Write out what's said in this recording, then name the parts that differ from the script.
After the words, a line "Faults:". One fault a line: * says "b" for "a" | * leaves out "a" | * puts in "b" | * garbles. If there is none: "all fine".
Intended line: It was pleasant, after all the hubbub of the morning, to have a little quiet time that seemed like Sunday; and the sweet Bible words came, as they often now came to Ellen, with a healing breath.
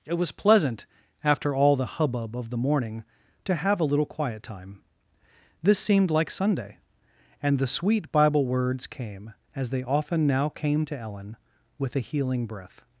It was pleasant, after all the hubbub of the morning, to have a little quiet time this seemed like Sunday; and the sweet Bible words came, as they often now came to Ellen, with a healing breath.
Faults:
* says "this" for "that"